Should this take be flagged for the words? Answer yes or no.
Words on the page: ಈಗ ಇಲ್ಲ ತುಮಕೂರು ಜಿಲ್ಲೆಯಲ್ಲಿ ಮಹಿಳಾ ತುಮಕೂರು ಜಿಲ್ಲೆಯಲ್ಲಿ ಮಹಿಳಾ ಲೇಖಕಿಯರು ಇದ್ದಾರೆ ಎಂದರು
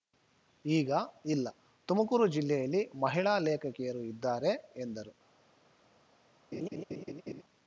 yes